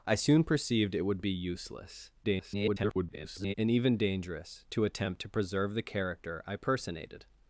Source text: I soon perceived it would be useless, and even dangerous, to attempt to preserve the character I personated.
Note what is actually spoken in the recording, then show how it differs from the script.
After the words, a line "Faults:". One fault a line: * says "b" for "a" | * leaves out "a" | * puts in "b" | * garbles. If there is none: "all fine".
I soon perceived it would be useless, [garbled] and even dangerous, to attempt to preserve the character I personated.
Faults:
* garbles